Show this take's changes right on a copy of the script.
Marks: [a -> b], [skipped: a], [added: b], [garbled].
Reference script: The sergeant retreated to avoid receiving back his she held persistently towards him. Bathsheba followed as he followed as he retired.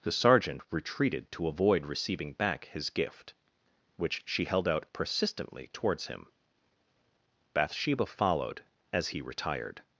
The sergeant retreated to avoid receiving back his [added: gift which] she held [added: out] persistently towards him. Bathsheba followed as he [skipped: followed as he] retired.